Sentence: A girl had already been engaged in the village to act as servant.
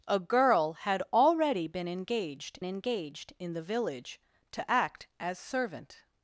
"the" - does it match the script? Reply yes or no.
yes